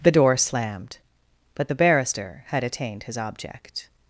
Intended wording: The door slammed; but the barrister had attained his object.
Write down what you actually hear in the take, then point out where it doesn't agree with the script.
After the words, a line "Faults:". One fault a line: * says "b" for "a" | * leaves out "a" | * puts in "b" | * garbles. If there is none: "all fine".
The door slammed; but the barrister had attained his object.
Faults:
all fine